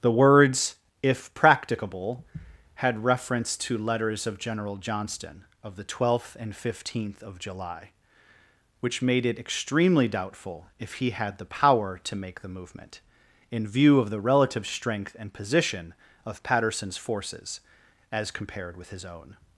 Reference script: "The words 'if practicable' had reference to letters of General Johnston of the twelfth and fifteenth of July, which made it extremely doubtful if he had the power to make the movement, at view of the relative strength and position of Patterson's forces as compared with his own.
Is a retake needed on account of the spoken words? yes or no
yes